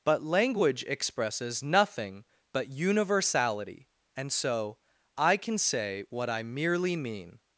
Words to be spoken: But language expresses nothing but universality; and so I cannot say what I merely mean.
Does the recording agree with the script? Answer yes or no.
no